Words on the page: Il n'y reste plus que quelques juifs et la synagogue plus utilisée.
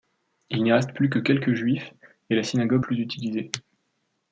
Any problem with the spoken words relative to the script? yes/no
no